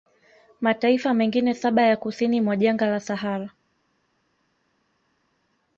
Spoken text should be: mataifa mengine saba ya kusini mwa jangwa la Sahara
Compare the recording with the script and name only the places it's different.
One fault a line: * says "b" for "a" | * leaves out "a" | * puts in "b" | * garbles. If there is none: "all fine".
all fine